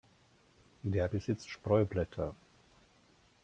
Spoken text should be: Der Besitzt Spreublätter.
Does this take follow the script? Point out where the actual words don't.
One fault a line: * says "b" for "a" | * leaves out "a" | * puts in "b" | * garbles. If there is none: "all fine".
all fine